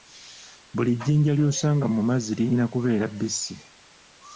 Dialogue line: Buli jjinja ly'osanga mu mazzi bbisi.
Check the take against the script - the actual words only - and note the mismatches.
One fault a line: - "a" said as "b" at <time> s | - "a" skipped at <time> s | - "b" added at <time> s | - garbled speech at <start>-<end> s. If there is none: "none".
- "lirina kubeera" added at 2.4 s